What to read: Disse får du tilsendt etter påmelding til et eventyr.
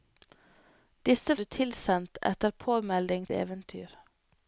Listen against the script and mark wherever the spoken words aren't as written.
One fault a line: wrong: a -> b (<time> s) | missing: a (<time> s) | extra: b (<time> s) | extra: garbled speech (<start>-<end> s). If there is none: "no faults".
missing: får (1.4 s)
missing: til et (3.3 s)